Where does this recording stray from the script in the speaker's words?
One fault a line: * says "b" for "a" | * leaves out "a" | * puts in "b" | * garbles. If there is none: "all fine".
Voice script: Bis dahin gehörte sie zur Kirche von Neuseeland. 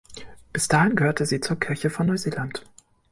all fine